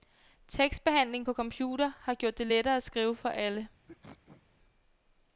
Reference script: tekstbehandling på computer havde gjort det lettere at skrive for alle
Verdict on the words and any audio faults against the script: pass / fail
fail